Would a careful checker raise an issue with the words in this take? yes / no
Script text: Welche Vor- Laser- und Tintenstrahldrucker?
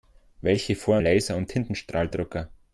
no